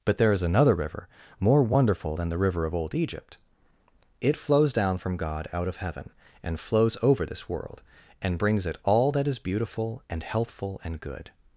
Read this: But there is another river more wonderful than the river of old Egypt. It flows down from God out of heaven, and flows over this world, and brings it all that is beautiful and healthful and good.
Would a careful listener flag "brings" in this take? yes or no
no